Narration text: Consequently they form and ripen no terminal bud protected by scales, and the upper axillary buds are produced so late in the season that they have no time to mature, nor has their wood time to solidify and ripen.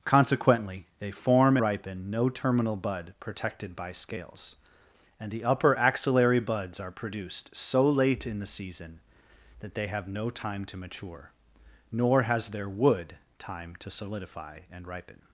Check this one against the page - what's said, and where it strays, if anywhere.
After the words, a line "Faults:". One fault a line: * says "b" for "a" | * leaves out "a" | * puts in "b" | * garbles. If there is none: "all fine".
Consequently they form ripen no terminal bud protected by scales, and the upper axillary buds are produced so late in the season that they have no time to mature, nor has their wood time to solidify and ripen.
Faults:
* leaves out "and"